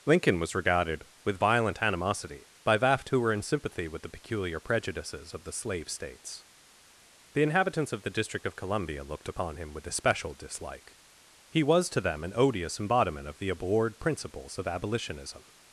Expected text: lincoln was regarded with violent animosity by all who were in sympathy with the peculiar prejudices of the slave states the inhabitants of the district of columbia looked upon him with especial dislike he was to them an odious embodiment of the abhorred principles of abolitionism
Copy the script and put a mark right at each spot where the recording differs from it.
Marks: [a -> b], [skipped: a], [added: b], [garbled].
lincoln was regarded with violent animosity by [all -> vaft] who were in sympathy with the peculiar prejudices of the slave states the inhabitants of the district of columbia looked upon him with especial dislike he was to them an odious embodiment of the abhorred principles of abolitionism